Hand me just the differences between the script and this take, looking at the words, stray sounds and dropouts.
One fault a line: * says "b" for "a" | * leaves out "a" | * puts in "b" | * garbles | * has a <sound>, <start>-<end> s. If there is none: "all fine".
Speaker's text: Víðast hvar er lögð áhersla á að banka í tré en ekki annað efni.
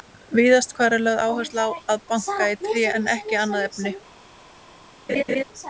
* has a laugh, 5.1-5.4 s